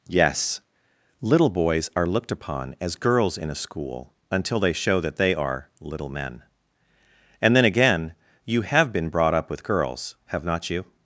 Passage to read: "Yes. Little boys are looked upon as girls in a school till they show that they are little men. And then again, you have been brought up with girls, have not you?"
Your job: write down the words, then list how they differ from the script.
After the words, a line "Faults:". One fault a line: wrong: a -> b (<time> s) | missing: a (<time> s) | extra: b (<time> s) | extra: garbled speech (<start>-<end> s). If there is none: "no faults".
"Yes. Little boys are looked upon as girls in a school until they show that they are little men. And then again, you have been brought up with girls, have not you?"
Faults:
wrong: till -> until (4.3 s)